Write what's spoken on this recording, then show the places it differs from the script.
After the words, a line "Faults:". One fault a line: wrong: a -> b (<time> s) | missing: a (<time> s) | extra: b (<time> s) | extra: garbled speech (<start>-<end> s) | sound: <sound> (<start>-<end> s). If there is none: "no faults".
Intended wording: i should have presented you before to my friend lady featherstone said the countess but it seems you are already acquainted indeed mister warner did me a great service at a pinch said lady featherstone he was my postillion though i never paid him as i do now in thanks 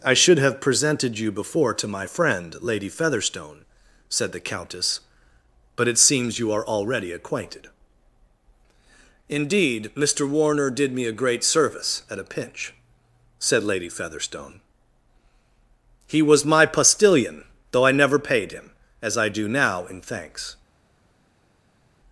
i should have presented you before to my friend lady featherstone said the countess but it seems you are already acquainted indeed mister warner did me a great service at a pinch said lady featherstone he was my postillion though i never paid him as i do now in thanks
Faults:
no faults